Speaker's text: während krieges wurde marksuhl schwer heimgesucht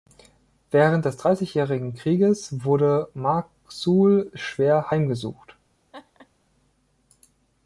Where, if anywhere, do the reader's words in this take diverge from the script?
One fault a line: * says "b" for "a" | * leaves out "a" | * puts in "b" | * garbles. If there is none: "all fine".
* puts in "des dreißigjährigen"